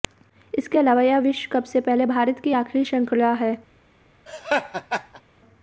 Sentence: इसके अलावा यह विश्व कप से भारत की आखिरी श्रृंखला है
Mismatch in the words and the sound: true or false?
true